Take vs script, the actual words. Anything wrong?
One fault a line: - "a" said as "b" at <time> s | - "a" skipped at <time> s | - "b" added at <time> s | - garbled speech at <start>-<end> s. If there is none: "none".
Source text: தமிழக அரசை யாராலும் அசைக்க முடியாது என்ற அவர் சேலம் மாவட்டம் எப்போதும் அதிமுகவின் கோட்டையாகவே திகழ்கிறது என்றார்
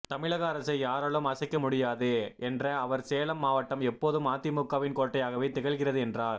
none